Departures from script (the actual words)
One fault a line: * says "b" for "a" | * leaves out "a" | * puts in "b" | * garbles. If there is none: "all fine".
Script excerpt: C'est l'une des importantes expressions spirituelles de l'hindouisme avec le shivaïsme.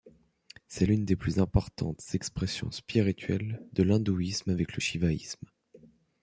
* puts in "plus"